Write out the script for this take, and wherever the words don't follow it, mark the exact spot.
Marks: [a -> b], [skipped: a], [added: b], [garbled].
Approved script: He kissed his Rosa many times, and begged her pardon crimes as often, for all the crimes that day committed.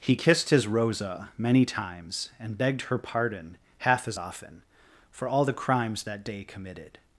He kissed his Rosa many times, and begged her pardon [crimes -> half] as often, for all the crimes that day committed.